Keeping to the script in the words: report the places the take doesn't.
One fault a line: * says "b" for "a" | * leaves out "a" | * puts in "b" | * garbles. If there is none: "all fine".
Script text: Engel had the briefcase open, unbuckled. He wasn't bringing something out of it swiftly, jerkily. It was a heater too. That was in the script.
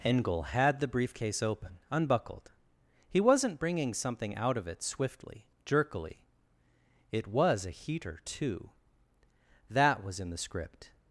all fine